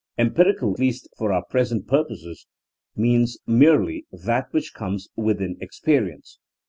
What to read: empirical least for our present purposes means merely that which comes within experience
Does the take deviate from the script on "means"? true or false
false